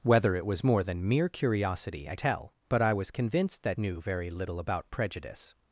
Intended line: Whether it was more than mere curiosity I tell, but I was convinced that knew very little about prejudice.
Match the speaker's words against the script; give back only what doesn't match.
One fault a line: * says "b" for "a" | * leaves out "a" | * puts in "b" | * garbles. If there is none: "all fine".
all fine